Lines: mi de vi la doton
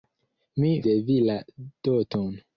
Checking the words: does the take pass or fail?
pass